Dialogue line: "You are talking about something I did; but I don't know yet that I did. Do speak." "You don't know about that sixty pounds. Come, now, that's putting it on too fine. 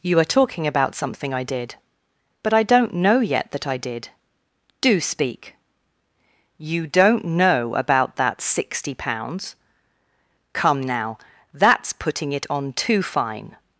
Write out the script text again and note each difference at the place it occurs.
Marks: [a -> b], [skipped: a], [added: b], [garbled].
"You are talking about something I did; but I don't know yet that I did. Do speak." "You don't know about that sixty pounds. Come, now, that's putting it on too fine.